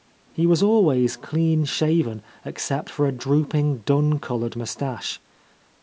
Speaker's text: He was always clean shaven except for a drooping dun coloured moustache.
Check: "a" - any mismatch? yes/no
no